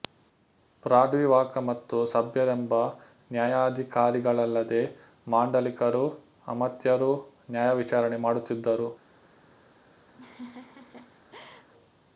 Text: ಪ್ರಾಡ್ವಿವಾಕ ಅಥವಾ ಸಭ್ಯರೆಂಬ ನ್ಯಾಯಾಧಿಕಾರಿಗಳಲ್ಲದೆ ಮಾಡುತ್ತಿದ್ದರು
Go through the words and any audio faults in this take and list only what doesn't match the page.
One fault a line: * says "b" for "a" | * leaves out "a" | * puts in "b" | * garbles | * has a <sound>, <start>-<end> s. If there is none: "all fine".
* says "ಮತ್ತು" for "ಅಥವಾ"
* puts in "ಮಾಂಡಲಿಕರೂ ಅಮಾತ್ಯರೂ ನ್ಯಾಯವಿಚಾರಣೆ"
* has a laugh, 10.1-11.7 s